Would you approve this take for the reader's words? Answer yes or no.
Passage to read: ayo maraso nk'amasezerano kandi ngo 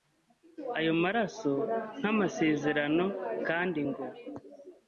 yes